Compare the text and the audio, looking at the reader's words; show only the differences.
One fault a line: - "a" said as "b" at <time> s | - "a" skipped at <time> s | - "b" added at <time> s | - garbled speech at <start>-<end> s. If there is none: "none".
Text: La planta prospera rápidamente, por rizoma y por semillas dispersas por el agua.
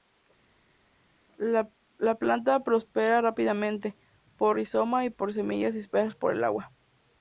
none